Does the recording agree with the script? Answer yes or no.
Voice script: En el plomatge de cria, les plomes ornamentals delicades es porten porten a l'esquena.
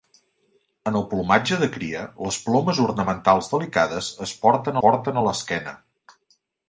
yes